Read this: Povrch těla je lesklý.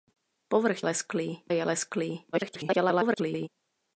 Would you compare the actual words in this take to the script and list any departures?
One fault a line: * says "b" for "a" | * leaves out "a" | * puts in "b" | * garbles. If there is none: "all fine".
* says "lesklý" for "těla"
* garbles